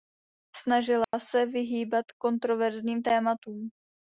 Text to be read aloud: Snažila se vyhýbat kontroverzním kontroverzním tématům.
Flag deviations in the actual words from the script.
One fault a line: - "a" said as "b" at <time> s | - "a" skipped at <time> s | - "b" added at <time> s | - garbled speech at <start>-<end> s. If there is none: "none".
- "kontroverzním" skipped at 3.0 s